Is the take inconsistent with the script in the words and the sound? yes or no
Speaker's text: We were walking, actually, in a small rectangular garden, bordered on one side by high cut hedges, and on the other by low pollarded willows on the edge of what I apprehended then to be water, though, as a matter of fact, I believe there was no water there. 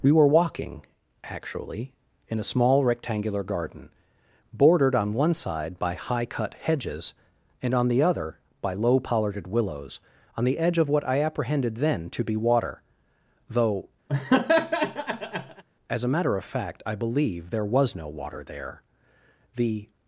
yes